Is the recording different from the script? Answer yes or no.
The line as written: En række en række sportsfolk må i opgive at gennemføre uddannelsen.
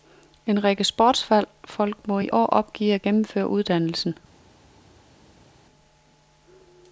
yes